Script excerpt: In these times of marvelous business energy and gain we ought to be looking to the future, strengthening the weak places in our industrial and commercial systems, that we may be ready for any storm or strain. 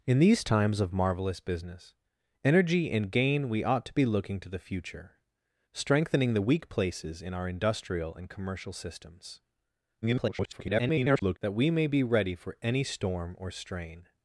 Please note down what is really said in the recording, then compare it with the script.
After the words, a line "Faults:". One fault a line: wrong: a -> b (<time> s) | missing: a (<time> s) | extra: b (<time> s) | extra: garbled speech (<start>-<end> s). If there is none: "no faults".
In these times of marvelous business energy and gain we ought to be looking to the future, strengthening the weak places in our industrial and commercial systems, [garbled] that we may be ready for any storm or strain.
Faults:
extra: garbled speech (10.0-11.4 s)